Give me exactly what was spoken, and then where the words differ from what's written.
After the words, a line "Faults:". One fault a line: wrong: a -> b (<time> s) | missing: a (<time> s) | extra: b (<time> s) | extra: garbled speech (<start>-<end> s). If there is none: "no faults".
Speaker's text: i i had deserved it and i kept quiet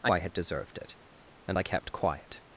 i i had deserved it and i kept quiet
Faults:
no faults